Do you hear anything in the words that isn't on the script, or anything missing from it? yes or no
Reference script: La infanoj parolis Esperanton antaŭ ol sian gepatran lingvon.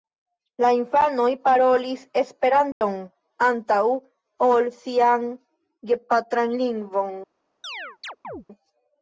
no